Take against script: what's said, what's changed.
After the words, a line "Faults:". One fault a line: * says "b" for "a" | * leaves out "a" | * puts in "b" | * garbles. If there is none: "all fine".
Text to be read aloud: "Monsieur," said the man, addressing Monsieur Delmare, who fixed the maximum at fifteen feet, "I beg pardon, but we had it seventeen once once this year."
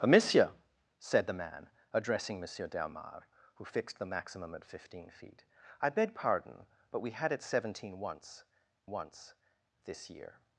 "Monsieur," said the man, addressing Monsieur Delmare, who fixed the maximum at fifteen feet, "I beg pardon, but we had it seventeen once once this year."
Faults:
all fine